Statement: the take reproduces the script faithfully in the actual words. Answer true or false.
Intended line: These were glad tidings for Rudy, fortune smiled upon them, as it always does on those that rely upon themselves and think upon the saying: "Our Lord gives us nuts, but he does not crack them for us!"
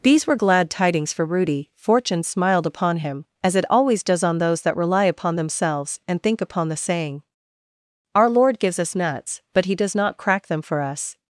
false